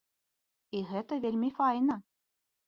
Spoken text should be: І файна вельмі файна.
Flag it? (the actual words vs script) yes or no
yes